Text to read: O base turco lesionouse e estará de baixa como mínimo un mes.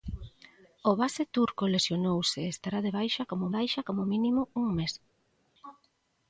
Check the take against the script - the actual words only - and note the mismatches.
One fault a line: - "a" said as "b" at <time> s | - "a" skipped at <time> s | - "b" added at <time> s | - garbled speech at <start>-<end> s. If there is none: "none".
- "baixa como" added at 3.6 s